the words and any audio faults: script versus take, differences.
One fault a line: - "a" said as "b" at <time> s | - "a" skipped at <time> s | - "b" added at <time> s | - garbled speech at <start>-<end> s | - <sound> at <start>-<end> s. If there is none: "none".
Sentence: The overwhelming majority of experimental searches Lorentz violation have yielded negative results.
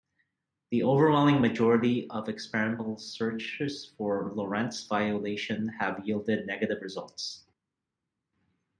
- "for" added at 3.8 s